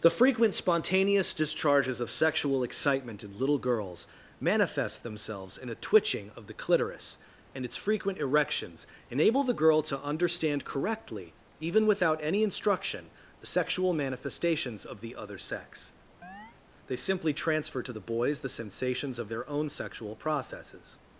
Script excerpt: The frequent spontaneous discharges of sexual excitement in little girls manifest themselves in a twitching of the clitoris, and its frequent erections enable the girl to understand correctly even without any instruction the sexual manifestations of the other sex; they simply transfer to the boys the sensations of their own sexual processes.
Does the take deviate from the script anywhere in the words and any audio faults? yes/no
yes